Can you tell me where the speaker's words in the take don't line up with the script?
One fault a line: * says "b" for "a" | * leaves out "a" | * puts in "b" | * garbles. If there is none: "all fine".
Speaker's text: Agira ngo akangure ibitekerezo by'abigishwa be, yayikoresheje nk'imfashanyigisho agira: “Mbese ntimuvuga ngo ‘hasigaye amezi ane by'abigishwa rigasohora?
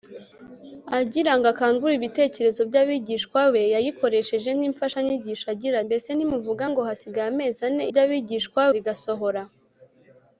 all fine